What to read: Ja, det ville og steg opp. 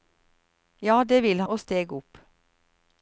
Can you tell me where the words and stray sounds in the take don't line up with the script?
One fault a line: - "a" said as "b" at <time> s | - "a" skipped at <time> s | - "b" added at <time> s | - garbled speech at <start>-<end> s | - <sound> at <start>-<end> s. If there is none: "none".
none